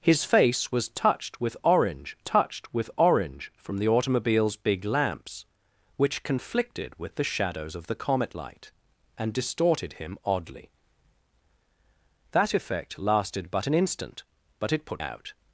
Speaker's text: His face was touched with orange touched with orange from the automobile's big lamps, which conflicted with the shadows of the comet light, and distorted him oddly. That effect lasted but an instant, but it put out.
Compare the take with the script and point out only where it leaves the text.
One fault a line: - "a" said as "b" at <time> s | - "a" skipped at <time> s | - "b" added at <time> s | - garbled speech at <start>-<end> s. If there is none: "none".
none